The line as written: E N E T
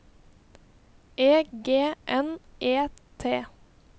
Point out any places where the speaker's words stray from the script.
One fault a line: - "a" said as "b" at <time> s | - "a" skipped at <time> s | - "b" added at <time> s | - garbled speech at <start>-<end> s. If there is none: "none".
- "G" added at 1.6 s